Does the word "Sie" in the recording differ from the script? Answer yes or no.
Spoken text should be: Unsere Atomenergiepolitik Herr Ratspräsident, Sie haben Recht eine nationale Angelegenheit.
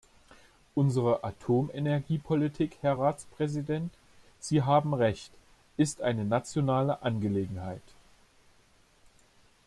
no